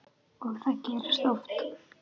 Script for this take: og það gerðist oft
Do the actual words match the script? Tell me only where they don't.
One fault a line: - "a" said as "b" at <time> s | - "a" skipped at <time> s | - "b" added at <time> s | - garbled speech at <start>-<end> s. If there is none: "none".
none